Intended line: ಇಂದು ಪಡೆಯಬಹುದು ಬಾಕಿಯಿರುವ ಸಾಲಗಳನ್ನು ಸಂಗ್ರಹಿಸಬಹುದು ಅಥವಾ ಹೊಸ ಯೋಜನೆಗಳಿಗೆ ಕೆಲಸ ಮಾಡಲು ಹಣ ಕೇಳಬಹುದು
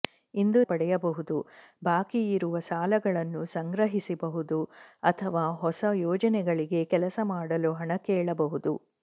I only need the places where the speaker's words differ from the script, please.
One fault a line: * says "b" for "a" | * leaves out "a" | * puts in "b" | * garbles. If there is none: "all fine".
all fine